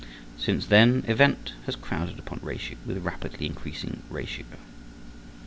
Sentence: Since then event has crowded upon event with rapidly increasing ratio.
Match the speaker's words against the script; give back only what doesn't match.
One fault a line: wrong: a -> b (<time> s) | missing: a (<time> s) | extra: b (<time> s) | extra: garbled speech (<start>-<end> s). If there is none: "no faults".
wrong: event -> ratio (2.4 s)